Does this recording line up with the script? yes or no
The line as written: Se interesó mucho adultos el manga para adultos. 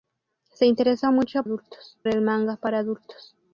yes